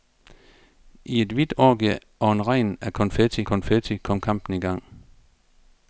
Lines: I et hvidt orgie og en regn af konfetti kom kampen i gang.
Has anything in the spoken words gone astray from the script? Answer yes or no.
yes